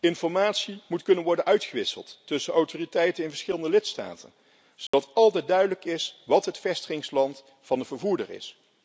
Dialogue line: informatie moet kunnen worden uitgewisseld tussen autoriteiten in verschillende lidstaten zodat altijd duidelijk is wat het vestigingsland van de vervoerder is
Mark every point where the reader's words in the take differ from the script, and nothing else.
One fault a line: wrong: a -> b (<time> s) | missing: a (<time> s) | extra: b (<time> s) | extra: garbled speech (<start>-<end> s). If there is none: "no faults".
no faults